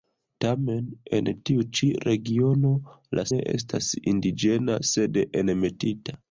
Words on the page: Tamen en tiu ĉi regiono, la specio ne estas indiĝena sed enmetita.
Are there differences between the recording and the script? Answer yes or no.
yes